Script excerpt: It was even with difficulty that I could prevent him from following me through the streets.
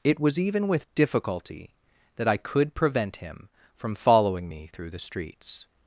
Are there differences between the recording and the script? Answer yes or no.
no